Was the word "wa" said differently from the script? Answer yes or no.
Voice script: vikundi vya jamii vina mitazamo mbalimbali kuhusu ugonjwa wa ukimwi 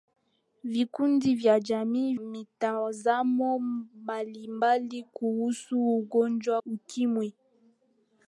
yes